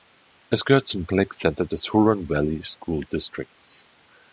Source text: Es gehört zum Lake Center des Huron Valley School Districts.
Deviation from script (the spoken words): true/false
false